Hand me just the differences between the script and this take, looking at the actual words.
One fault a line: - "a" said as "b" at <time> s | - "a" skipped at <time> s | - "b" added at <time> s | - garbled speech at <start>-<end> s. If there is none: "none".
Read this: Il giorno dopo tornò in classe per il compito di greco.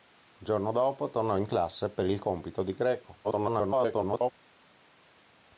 - garbled speech at 3.2-4.3 s